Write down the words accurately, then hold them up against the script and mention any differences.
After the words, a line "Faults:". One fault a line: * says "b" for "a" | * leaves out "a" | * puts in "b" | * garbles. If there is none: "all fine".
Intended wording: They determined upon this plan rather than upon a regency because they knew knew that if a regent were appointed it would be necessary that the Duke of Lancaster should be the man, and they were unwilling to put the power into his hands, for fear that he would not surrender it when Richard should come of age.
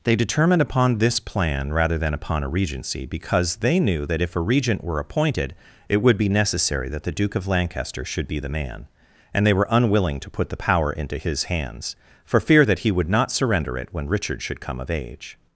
They determined upon this plan rather than upon a regency because they knew that if a regent were appointed it would be necessary that the Duke of Lancaster should be the man, and they were unwilling to put the power into his hands, for fear that he would not surrender it when Richard should come of age.
Faults:
* leaves out "knew"